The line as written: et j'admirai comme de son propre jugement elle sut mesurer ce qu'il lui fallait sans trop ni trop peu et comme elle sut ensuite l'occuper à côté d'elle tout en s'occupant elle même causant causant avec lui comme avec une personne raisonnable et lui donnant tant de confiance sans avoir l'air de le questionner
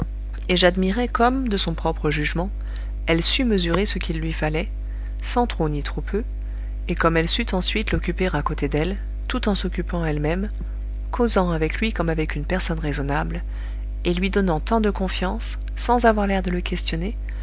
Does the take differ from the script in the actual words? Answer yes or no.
yes